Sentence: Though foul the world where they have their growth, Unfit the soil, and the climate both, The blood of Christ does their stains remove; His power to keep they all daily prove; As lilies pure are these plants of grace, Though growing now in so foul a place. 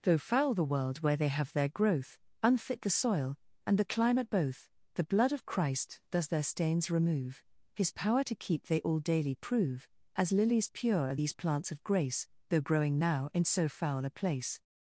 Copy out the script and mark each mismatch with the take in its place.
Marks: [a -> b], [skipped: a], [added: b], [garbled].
Though foul the world where they have their growth, Unfit the soil, and the climate both, The blood of Christ does their stains remove; His power to keep they all daily prove; As lilies pure are these plants of grace, Though growing now in so foul a place.